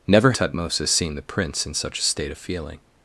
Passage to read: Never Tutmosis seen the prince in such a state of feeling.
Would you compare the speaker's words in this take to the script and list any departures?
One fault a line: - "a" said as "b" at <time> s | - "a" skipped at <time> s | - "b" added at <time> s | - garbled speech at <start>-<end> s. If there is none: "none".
none